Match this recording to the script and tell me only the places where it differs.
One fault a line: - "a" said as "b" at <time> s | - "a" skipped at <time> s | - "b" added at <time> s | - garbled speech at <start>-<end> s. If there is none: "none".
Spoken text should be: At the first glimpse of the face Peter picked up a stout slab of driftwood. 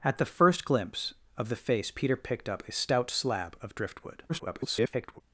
- garbled speech at 4.3-5.2 s